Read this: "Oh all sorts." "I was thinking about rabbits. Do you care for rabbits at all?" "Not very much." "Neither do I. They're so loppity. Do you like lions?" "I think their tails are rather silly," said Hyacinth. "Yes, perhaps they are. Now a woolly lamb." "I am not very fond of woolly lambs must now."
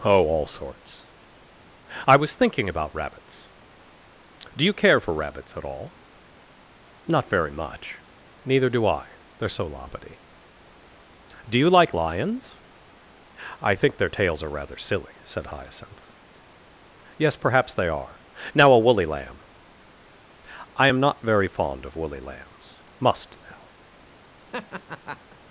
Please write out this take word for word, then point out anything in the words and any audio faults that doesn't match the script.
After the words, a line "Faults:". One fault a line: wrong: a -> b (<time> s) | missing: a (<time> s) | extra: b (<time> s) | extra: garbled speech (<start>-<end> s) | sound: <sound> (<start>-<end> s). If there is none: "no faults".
"Oh all sorts." "I was thinking about rabbits. Do you care for rabbits at all?" "Not very much." "Neither do I. They're so loppity. Do you like lions?" "I think their tails are rather silly," said Hyacinth. "Yes, perhaps they are. Now a woolly lamb." "I am not very fond of woolly lambs must now."
Faults:
sound: laugh (24.5-25.4 s)